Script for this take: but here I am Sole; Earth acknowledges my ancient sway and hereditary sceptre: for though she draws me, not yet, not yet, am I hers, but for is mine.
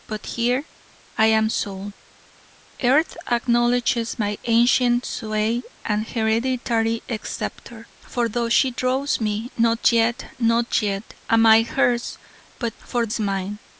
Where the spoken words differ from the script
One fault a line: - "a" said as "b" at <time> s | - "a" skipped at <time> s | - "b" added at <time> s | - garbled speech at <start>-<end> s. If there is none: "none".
none